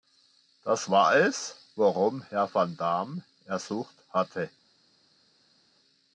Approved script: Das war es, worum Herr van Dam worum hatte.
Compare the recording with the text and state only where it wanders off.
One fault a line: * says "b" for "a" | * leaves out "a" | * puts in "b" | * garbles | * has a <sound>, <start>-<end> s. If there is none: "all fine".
* says "ersucht" for "worum"